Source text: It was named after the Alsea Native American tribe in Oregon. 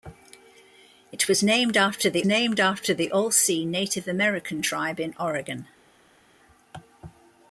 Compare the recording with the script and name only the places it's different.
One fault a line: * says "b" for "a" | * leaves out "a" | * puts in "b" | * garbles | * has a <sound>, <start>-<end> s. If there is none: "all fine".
* puts in "named after the"